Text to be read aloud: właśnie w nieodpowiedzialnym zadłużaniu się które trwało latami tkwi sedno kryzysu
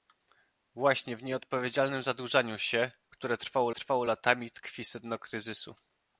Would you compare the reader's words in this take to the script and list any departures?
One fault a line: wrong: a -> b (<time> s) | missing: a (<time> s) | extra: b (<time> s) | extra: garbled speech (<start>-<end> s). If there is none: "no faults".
extra: trwało (3.7 s)